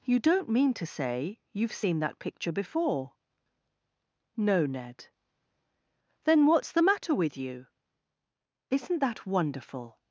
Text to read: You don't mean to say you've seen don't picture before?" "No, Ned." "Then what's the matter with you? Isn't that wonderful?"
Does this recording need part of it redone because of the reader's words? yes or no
yes